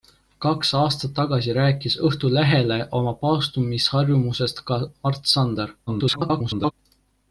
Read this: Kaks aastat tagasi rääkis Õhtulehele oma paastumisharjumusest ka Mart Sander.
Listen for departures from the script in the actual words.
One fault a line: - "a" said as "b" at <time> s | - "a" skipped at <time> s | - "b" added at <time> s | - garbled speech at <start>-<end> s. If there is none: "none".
- garbled speech at 5.9-6.7 s